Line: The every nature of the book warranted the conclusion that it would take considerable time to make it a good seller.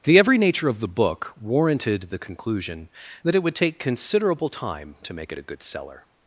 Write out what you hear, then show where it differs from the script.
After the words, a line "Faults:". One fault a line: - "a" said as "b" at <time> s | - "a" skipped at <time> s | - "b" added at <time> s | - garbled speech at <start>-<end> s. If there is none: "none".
The every nature of the book warranted the conclusion that it would take considerable time to make it a good seller.
Faults:
none